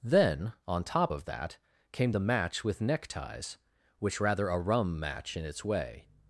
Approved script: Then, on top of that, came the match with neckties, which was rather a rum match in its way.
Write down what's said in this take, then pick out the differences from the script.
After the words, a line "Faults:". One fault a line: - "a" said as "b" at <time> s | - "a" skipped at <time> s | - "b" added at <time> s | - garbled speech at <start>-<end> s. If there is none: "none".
Then, on top of that, came the match with neckties, which rather a rum match in its way.
Faults:
- "was" skipped at 4.2 s